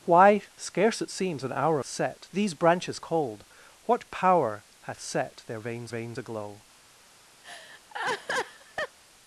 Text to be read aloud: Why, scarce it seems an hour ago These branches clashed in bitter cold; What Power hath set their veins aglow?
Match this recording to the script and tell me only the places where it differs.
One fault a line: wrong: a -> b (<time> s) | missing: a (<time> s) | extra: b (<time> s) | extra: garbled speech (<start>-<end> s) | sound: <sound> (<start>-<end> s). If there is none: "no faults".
wrong: ago -> set (1.8 s)
missing: clashed in bitter (3.0 s)
extra: veins (5.9 s)
sound: laugh (7.4-9.0 s)